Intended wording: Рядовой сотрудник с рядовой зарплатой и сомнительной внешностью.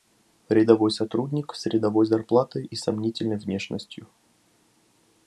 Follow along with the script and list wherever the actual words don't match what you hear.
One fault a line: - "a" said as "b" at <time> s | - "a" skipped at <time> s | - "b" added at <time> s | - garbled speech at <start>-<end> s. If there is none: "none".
none